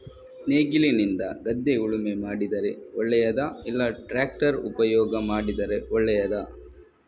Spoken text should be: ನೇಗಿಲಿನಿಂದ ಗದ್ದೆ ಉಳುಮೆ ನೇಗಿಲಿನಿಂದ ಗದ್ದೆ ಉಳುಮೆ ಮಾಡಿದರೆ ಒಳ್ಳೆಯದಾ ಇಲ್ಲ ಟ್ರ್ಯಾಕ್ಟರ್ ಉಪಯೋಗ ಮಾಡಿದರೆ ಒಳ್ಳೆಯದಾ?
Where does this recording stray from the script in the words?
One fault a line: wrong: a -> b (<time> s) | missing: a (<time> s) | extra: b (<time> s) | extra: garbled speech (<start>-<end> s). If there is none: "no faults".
missing: ನೇಗಿಲಿನಿಂದ ಗದ್ದೆ ಉಳುಮೆ (2.1 s)